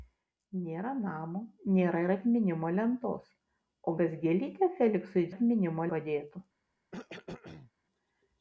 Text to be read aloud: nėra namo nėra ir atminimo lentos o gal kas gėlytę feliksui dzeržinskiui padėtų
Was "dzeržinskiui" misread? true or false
true